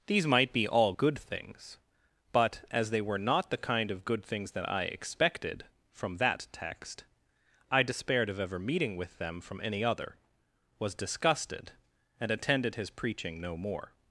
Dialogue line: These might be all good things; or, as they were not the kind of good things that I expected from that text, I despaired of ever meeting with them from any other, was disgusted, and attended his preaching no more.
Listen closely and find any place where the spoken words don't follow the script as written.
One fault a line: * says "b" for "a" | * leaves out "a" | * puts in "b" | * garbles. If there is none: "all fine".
* says "but" for "or"